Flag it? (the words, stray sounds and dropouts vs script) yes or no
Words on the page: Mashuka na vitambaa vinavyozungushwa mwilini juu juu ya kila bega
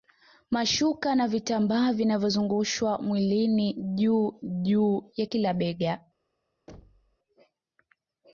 yes